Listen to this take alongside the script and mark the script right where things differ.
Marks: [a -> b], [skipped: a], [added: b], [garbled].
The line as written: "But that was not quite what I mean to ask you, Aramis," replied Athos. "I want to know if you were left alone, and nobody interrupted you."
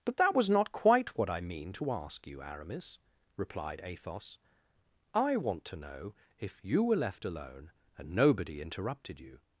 "But that was not quite what I mean to ask you, Aramis," replied Athos. "I want to know if you were left alone, and nobody interrupted you."